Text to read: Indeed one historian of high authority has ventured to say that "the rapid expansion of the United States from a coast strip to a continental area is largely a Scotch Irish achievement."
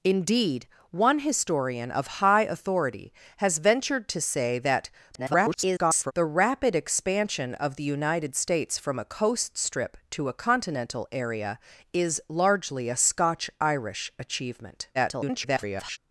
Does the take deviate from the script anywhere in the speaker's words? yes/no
yes